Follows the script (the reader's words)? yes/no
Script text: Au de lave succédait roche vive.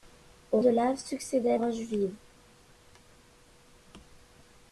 yes